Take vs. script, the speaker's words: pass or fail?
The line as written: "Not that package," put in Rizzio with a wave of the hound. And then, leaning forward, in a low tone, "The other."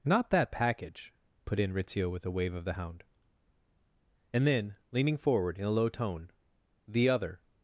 pass